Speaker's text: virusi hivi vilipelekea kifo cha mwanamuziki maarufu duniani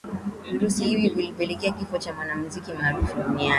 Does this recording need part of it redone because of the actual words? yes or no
no